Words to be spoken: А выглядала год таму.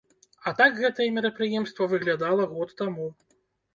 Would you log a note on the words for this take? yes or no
yes